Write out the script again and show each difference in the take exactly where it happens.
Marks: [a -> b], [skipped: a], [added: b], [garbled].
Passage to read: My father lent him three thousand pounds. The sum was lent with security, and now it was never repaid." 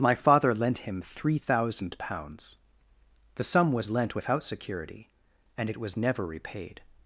My father lent him three thousand pounds. The sum was lent [with -> without] security, and [skipped: now] it was never repaid."